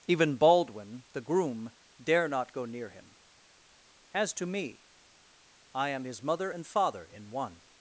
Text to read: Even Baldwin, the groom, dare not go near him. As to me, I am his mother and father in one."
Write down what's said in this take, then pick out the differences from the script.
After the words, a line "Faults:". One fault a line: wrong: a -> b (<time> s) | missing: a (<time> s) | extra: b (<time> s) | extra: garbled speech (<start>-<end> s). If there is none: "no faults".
Even Baldwin, the groom, dare not go near him. As to me, I am his mother and father in one."
Faults:
no faults